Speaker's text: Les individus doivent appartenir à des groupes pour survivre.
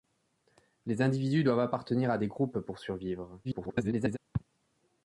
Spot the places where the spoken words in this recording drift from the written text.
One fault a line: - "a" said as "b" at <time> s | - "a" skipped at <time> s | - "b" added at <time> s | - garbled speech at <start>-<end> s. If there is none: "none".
- garbled speech at 3.4-4.2 s